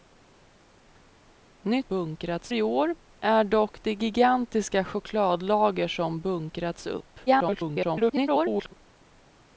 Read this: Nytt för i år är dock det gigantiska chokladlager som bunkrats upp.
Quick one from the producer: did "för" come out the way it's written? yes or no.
no